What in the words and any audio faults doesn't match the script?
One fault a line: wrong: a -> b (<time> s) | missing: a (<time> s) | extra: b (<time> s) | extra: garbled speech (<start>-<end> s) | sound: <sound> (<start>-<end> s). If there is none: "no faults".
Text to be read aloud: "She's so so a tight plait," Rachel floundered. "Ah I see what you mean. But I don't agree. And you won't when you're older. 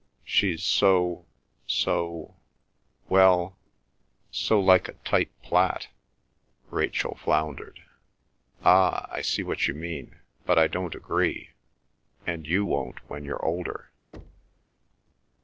extra: well so like (3.1 s)
sound: thud (14.1-14.7 s)